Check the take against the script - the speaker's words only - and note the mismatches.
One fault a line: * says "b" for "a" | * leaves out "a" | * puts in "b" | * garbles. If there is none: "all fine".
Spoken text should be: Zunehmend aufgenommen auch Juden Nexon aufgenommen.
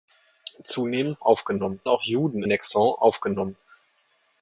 all fine